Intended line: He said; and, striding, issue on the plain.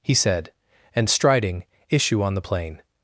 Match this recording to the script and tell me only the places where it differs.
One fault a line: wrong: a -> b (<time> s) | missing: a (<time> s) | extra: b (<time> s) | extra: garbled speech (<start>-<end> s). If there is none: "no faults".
no faults